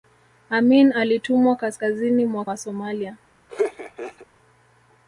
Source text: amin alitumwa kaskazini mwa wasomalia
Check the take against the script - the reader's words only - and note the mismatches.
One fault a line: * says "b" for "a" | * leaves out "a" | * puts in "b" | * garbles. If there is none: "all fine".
all fine